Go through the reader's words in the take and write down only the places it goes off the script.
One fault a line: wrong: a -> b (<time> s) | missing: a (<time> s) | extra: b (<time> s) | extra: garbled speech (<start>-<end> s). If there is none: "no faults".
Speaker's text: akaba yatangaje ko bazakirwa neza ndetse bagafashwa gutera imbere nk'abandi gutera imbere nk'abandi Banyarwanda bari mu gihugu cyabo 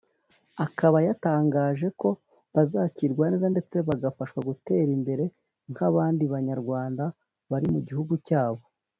missing: gutera imbere nk'abandi (6.2 s)